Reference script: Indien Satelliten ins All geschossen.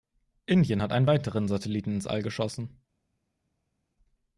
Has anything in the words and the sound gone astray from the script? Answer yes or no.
yes